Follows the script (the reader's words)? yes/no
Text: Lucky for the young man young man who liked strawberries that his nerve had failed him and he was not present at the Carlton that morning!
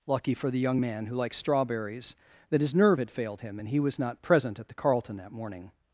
no